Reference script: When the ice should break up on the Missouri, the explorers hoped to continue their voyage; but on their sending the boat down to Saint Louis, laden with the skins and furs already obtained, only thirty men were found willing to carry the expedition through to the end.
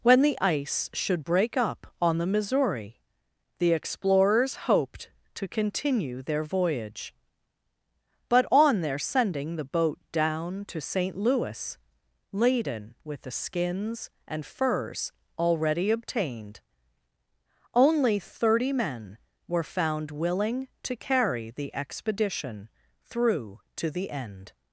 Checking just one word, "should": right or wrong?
right